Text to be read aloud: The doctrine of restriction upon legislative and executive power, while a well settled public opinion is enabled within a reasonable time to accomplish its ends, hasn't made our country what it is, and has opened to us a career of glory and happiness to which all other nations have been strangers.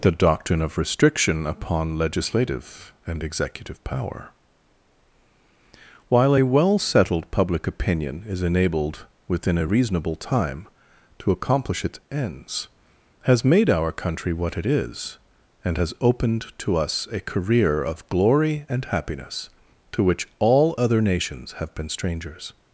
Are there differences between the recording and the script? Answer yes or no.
yes